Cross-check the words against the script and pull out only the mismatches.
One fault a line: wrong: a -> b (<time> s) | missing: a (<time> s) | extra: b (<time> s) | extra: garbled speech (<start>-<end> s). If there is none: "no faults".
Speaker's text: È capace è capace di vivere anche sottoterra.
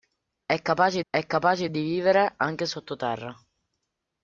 no faults